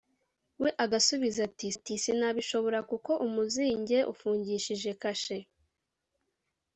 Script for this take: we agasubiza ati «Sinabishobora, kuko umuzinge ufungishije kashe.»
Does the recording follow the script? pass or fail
fail